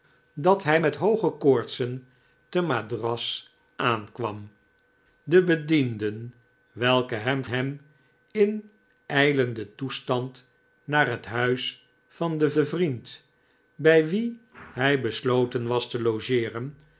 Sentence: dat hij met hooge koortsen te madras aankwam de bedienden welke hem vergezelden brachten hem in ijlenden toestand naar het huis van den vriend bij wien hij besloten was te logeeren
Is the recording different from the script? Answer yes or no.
yes